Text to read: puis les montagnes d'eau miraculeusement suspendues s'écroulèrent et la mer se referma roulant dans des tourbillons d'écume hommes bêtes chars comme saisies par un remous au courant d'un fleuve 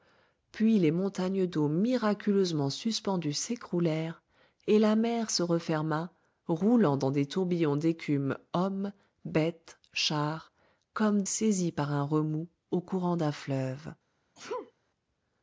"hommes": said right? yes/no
yes